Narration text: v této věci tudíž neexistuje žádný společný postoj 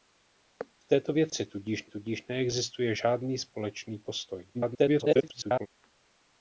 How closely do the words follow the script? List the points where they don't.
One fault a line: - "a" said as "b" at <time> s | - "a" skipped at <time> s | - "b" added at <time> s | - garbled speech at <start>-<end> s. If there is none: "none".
- "tudíž" added at 1.9 s
- garbled speech at 4.5-5.7 s